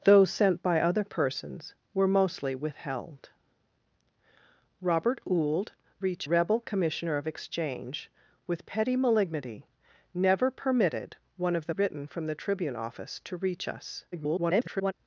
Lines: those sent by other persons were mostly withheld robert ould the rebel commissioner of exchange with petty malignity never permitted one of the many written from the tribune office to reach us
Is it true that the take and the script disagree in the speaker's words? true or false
true